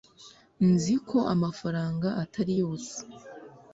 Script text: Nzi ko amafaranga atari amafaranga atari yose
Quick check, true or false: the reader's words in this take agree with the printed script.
false